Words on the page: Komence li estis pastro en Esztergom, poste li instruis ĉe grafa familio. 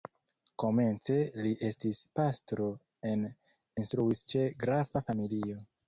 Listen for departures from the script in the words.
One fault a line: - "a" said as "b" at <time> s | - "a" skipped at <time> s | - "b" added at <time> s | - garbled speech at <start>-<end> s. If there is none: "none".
- "Esztergom poste li" skipped at 3.3 s